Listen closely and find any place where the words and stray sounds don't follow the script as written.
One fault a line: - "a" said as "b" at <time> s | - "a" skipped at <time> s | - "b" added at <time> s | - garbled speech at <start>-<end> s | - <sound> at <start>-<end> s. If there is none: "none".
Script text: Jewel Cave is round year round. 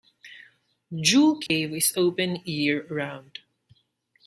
- dropout at 1.5-1.5 s
- "round" said as "open" at 2.0 s